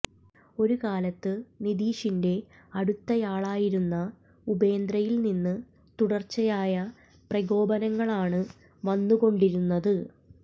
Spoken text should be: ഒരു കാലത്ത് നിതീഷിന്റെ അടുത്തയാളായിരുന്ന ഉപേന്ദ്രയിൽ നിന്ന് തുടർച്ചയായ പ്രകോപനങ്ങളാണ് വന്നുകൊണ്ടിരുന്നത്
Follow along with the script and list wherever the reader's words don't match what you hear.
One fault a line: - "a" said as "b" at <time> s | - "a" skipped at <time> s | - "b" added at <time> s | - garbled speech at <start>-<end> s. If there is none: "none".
none